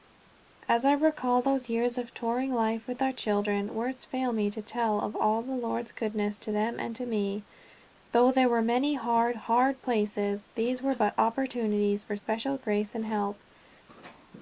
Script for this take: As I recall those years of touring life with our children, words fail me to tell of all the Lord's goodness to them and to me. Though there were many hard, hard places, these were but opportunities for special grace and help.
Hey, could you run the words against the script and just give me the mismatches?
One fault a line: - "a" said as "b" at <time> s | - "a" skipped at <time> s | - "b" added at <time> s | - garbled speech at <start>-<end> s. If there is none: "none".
none